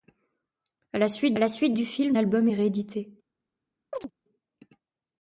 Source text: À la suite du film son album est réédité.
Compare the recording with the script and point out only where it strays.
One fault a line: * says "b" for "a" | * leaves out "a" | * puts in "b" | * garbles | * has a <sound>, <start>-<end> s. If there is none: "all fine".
* puts in "la suite"
* leaves out "son"
* has a chirp, 3.9-4.1 s